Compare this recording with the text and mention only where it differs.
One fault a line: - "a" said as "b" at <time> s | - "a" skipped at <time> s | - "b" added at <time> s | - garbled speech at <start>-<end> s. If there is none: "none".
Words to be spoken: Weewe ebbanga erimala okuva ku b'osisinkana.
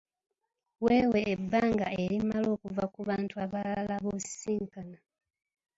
- "bantu abalala" added at 3.1 s